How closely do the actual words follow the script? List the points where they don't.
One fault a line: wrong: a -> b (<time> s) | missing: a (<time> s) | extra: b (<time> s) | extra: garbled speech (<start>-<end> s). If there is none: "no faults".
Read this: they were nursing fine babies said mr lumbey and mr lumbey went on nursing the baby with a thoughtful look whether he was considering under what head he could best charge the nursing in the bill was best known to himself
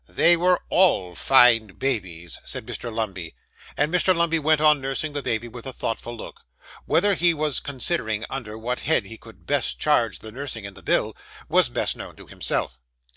wrong: nursing -> all (0.7 s)